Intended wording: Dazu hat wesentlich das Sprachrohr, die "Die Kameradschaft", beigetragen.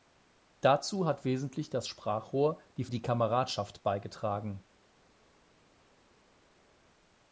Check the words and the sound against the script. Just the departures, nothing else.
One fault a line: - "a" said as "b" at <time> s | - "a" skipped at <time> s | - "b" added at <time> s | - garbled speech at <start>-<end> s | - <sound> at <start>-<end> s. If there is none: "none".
none